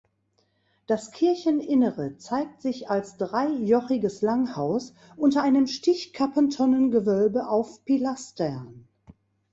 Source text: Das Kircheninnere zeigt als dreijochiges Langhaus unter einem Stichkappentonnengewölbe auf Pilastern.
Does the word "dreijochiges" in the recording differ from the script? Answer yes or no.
no